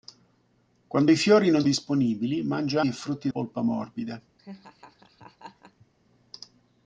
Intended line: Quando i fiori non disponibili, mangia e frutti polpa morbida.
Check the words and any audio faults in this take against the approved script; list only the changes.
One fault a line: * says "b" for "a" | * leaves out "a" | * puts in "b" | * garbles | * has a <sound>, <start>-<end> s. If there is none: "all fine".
* has a laugh, 4.4-5.9 s